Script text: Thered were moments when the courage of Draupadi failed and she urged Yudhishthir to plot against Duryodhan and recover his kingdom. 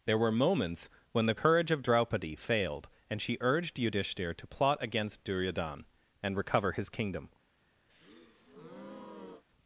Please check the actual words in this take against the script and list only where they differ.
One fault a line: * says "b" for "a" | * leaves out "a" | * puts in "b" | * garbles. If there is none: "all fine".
* says "There" for "Thered"